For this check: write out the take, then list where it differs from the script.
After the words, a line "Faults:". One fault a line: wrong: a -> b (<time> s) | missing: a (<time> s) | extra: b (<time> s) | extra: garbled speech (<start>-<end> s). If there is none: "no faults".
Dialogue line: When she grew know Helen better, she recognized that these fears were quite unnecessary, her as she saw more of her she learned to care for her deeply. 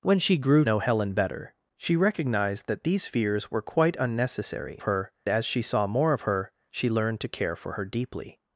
When she grew know Helen better, she recognized that these fears were quite unnecessary, her as she saw more of her she learned to care for her deeply.
Faults:
no faults